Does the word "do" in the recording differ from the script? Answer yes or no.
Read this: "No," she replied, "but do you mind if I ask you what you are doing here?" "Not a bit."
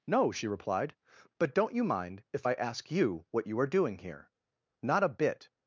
yes